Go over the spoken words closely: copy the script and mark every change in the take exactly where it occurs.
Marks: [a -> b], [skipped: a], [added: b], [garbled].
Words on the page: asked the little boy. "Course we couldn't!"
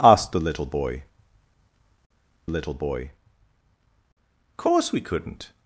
asked the little boy. [added: little boy] "Course we couldn't!"